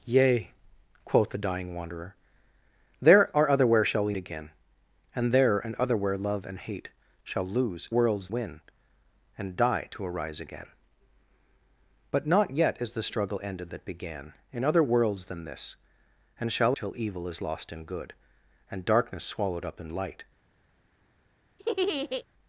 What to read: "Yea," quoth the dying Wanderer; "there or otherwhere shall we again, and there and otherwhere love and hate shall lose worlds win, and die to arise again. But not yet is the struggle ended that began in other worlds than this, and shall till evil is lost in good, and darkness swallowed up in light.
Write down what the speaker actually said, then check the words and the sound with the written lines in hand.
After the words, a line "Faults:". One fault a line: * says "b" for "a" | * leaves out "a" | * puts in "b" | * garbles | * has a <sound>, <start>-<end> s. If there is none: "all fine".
"Yea," quoth the dying Wanderer; "there or otherwhere shall we again, and there and otherwhere love and hate shall lose worlds win, and die to arise again. But not yet is the struggle ended that began in other worlds than this, and shall till evil is lost in good, and darkness swallowed up in light.
Faults:
* has a laugh, 21.6-22.2 s